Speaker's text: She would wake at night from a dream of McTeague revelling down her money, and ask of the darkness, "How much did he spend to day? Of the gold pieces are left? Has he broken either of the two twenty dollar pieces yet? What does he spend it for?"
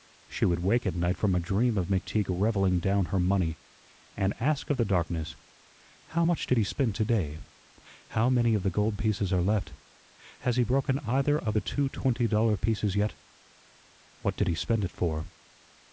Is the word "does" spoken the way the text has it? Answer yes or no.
no